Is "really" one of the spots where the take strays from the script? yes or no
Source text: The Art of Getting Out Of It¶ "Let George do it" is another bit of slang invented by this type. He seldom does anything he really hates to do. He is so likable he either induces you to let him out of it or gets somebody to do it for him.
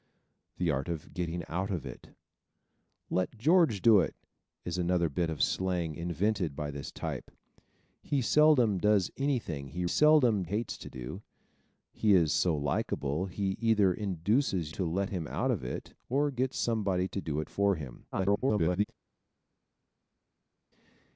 yes